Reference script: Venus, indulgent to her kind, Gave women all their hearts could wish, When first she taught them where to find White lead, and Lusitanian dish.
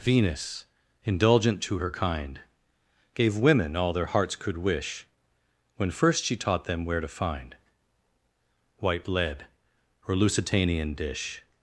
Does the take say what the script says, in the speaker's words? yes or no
no